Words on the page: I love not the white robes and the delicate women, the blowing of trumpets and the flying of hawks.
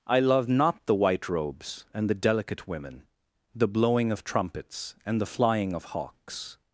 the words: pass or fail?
pass